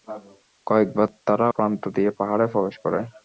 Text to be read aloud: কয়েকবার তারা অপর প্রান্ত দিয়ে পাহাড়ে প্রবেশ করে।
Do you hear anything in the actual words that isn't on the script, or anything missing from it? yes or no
yes